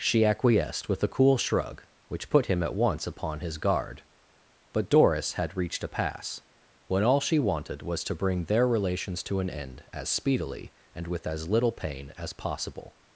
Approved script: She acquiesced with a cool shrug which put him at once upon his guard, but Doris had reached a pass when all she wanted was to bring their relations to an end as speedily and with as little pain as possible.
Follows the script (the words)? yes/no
yes